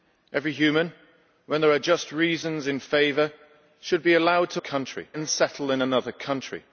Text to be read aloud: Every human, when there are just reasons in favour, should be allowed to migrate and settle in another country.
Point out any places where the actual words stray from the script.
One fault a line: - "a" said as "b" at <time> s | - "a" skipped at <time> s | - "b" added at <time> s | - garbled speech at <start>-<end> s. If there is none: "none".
- "migrate" said as "country" at 4.6 s